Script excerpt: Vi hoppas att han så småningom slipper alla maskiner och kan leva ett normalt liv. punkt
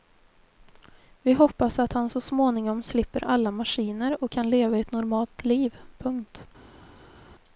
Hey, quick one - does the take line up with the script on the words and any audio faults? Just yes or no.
yes